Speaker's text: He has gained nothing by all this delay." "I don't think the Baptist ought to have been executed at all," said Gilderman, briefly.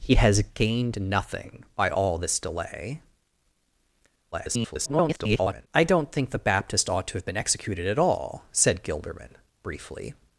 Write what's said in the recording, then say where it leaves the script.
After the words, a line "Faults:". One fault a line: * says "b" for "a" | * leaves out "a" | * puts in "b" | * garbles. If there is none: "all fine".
He has gained nothing by all this delay." [garbled] "I don't think the Baptist ought to have been executed at all," said Gilderman, briefly.
Faults:
* garbles